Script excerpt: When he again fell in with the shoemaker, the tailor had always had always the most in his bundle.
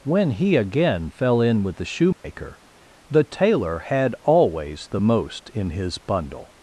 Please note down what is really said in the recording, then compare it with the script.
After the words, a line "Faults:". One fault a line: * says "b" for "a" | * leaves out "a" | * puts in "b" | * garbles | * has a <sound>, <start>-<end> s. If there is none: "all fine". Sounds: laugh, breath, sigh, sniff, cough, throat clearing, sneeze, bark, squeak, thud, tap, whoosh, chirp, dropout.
When he again fell in with the shoemaker, the tailor had always the most in his bundle.
Faults:
* has a dropout, 2.1-2.2 s
* leaves out "had always"